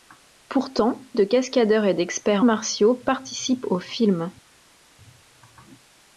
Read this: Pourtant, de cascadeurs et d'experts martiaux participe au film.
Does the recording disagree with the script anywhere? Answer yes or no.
no